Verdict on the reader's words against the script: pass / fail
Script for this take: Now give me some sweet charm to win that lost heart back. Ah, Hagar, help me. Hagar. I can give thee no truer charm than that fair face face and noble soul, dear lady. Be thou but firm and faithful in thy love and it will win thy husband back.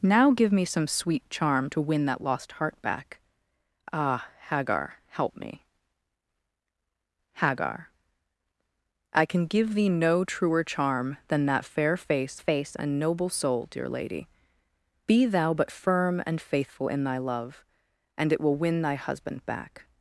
pass